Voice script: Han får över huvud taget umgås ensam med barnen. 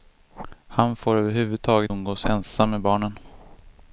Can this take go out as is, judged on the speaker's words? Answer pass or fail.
pass